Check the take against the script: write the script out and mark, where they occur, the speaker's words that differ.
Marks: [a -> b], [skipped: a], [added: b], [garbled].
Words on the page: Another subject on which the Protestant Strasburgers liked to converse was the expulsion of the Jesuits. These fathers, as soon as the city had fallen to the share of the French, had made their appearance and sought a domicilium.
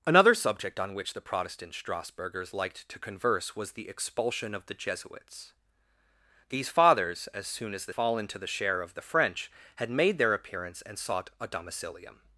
Another subject on which the Protestant Strasburgers liked to converse was the expulsion of the Jesuits. These fathers, as soon as the [skipped: city had] fallen to the share of the French, had made their appearance and sought a domicilium.